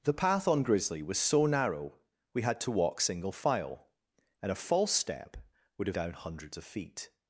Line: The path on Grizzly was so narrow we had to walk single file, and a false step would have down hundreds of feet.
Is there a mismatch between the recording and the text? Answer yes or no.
no